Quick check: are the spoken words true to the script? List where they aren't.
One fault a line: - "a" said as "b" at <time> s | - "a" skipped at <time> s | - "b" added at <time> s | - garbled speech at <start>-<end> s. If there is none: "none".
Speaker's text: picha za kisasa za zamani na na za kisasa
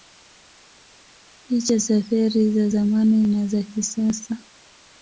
- "kisasa" said as "feri" at 2.0 s
- "na" skipped at 3.5 s